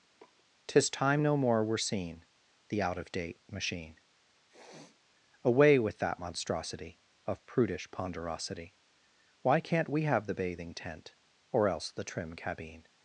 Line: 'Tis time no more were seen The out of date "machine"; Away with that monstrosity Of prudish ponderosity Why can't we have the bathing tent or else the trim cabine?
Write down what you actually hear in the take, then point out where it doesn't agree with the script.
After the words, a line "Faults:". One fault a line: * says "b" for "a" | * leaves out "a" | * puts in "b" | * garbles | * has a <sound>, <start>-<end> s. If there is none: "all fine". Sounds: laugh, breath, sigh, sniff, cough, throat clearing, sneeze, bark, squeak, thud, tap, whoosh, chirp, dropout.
'Tis time no more were seen The out of date "machine"; Away with that monstrosity Of prudish ponderosity Why can't we have the bathing tent or else the trim cabine?
Faults:
* has a sniff, 0.2-0.4 s
* has a sniff, 4.5-5.0 s